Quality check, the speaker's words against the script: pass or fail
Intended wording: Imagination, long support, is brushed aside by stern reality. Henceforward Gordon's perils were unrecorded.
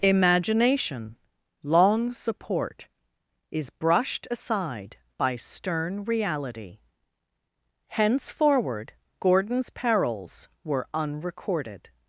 pass